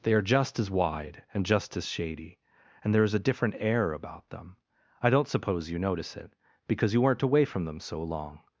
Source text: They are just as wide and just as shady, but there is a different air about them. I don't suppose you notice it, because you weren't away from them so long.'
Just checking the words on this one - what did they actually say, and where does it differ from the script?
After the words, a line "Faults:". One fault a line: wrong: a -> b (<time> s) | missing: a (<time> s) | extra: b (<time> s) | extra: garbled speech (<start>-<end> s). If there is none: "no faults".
They are just as wide and just as shady, and there is a different air about them. I don't suppose you notice it, because you weren't away from them so long.'
Faults:
wrong: but -> and (2.8 s)